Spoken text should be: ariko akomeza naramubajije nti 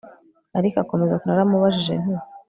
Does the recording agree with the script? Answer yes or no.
yes